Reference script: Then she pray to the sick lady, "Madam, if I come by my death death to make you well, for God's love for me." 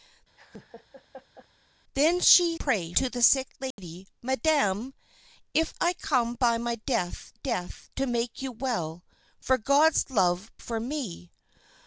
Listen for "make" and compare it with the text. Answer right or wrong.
right